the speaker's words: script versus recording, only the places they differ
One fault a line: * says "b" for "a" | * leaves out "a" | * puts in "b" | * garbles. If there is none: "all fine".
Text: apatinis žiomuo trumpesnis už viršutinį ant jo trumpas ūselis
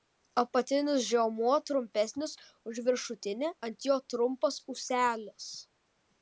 all fine